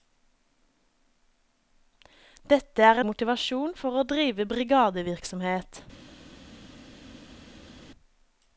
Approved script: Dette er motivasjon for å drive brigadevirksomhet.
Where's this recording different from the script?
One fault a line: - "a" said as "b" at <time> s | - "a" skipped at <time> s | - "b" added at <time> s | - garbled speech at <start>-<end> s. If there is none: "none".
none